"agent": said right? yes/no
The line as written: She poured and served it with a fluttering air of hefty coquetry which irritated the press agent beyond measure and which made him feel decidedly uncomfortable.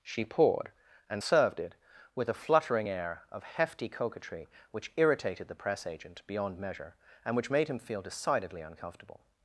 yes